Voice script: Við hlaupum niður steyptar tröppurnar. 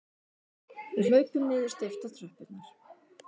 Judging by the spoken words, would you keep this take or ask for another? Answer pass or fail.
pass